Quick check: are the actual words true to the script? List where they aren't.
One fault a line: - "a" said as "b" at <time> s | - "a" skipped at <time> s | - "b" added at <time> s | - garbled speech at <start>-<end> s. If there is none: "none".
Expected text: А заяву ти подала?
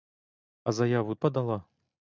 - "ти" skipped at 1.1 s